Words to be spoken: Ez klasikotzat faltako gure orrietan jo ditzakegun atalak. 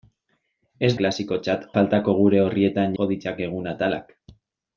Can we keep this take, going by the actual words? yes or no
yes